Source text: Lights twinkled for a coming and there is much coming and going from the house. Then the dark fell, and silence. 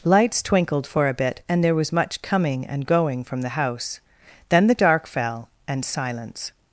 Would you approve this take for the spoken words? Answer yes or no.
no